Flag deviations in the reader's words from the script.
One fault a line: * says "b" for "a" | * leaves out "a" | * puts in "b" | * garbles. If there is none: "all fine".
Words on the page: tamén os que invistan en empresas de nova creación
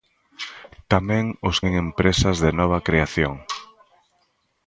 * leaves out "que invistan"